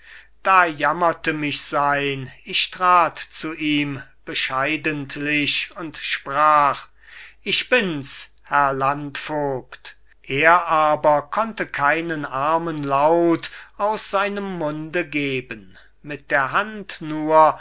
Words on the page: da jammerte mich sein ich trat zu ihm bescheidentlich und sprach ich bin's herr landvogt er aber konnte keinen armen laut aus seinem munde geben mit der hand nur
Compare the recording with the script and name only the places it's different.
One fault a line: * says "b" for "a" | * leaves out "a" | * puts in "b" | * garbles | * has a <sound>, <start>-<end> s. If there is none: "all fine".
all fine